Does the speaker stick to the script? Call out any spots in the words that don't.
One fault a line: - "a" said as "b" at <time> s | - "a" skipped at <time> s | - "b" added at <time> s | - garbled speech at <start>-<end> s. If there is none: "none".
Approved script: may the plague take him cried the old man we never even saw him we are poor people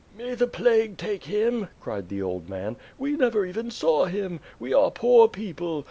none